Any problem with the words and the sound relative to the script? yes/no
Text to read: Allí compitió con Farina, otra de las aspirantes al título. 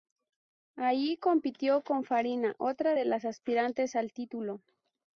no